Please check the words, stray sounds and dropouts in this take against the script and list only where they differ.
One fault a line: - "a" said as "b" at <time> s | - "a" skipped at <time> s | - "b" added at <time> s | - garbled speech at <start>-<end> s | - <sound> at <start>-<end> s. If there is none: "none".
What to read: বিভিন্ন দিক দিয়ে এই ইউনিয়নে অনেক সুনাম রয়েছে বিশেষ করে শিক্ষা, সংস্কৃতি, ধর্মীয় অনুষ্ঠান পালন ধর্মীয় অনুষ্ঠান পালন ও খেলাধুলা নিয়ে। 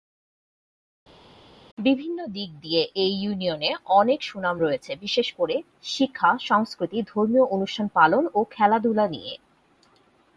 - "ধর্মীয় অনুষ্ঠান পালন" skipped at 8.2 s